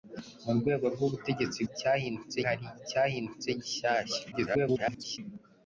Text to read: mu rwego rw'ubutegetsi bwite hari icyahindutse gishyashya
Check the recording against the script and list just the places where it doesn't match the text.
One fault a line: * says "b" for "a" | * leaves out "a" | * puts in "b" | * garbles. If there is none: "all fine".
* says "icyahindutse" for "bwite"
* garbles